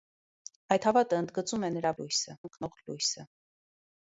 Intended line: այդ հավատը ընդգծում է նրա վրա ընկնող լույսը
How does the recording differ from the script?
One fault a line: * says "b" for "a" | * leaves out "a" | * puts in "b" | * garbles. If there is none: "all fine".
* says "լույսը" for "վրա"